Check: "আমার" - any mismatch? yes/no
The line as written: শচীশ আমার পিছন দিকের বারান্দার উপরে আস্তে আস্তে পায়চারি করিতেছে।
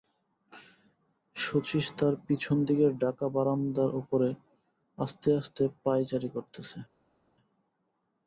yes